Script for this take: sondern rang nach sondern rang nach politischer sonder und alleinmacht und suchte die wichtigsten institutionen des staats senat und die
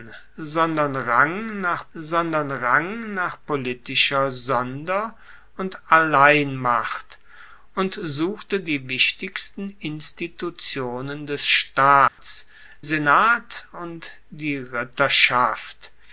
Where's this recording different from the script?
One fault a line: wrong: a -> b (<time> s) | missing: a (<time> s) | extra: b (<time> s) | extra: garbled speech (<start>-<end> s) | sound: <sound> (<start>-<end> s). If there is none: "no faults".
sound: dropout (12.1-12.2 s)